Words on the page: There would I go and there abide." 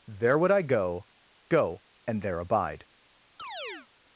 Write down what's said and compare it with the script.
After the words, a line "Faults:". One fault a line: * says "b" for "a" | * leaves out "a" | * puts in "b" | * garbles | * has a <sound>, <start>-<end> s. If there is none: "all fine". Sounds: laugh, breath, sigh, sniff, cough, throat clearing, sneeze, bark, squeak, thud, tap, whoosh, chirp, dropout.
There would I go go and there abide."
Faults:
* puts in "go"
* has a chirp, 3.4-3.9 s